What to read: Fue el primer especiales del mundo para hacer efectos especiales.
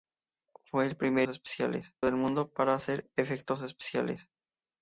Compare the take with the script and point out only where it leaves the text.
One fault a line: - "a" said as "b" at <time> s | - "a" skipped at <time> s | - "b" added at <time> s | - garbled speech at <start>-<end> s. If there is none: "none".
none